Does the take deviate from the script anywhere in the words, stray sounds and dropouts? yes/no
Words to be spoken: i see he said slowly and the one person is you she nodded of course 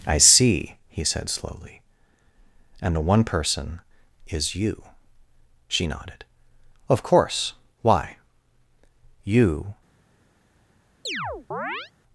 yes